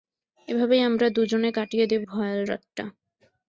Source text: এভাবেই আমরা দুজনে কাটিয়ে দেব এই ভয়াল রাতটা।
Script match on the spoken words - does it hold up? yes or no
no